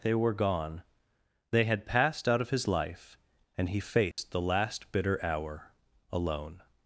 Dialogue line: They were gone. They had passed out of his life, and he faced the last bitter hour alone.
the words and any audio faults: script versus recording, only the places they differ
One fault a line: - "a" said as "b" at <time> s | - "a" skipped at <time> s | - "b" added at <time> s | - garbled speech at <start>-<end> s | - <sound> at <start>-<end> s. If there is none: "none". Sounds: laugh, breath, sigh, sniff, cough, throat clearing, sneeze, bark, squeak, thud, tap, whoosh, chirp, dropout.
- dropout at 4.1-4.2 s